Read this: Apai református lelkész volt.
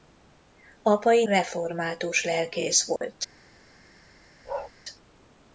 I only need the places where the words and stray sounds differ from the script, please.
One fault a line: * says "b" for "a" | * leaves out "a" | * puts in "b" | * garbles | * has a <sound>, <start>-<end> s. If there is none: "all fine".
* has a dropout, 3.0-3.0 s
* has a bark, 4.4-4.7 s